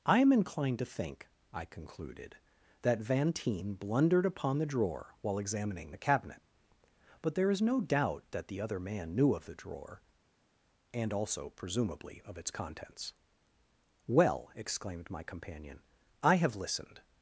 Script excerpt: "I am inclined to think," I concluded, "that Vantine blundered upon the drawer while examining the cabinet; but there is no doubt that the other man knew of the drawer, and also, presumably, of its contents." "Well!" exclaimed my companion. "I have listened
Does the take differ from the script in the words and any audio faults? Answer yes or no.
no